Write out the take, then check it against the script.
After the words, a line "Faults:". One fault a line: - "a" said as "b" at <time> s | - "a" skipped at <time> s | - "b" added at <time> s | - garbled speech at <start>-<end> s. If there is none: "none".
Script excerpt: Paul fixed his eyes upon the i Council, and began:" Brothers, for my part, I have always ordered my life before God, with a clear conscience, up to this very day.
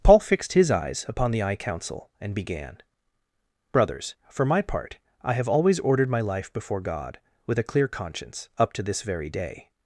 Paul fixed his eyes upon the i Council, and began:" Brothers, for my part, I have always ordered my life before God, with a clear conscience, up to this very day.
Faults:
none